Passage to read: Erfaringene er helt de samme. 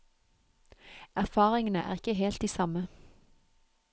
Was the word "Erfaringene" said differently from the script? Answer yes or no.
no